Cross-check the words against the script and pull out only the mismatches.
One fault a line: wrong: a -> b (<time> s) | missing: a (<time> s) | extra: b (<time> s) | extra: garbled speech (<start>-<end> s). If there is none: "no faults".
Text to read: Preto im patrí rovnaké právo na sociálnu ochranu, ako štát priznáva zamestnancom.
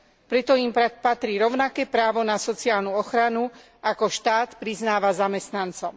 no faults